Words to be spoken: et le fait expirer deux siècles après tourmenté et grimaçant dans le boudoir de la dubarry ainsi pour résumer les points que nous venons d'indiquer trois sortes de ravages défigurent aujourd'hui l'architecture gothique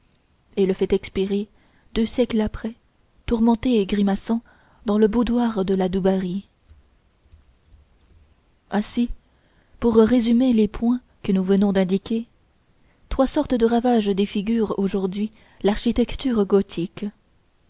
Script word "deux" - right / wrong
right